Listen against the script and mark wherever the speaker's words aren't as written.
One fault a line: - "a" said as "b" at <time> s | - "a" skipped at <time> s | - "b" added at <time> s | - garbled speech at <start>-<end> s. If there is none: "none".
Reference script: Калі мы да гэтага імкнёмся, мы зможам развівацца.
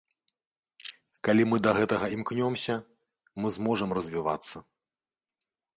none